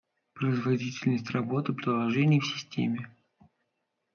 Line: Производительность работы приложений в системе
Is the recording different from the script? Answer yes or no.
no